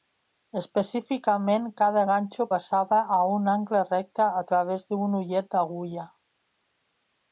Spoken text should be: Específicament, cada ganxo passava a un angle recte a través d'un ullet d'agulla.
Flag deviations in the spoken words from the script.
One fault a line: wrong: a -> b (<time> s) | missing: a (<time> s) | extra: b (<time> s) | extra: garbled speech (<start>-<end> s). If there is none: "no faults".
no faults